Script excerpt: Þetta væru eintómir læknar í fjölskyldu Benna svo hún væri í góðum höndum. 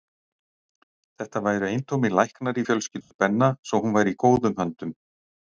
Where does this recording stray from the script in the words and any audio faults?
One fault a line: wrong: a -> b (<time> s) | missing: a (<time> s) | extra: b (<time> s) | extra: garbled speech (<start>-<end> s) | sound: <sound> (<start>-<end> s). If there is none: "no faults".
sound: dropout (3.0-3.1 s)